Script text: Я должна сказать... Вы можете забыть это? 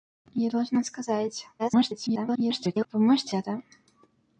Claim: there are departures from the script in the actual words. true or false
true